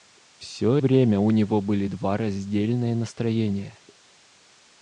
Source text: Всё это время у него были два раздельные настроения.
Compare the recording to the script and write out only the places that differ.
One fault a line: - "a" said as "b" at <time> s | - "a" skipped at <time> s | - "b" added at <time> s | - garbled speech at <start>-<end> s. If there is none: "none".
- "это" skipped at 0.8 s